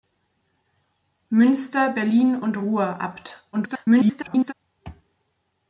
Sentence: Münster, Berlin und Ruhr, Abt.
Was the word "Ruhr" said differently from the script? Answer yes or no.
no